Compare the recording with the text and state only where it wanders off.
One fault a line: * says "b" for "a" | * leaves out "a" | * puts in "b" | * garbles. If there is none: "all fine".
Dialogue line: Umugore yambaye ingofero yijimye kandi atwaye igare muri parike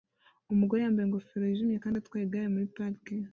all fine